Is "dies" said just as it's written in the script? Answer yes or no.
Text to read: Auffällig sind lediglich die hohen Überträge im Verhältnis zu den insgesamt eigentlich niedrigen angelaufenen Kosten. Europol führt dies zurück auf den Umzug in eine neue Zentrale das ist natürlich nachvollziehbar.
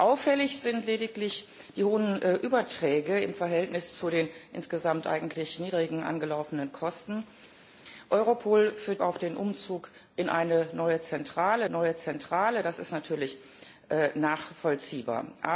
no